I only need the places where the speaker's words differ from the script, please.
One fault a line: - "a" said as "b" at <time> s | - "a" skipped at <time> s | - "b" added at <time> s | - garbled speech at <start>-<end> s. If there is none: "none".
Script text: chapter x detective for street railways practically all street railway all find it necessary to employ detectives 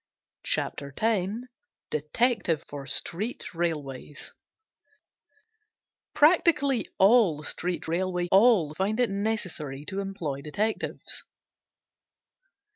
none